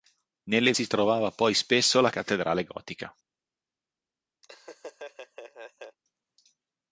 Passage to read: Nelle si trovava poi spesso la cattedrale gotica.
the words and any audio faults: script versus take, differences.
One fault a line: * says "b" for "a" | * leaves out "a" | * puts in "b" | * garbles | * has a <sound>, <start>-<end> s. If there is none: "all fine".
* has a laugh, 4.4-6.0 s